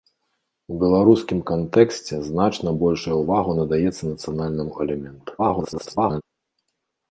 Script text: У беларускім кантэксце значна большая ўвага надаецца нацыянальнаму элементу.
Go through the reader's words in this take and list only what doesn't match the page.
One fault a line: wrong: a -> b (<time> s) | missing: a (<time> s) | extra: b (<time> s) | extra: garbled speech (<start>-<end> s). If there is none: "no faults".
extra: garbled speech (5.4-6.2 s)